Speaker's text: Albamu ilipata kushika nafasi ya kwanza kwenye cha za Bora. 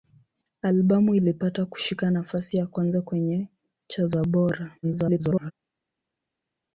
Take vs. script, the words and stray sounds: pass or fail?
fail